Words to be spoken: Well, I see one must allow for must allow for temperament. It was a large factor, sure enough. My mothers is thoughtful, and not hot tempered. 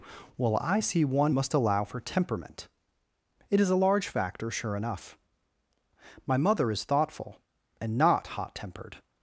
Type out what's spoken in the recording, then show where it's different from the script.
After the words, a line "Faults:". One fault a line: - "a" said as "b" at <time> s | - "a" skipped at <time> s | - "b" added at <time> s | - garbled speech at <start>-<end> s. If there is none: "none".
Well, I see one must allow for temperament. It is a large factor, sure enough. My mother is thoughtful, and not hot tempered.
Faults:
- "must allow for" skipped at 2.0 s
- "was" said as "is" at 3.6 s
- "mothers" said as "mother" at 6.4 s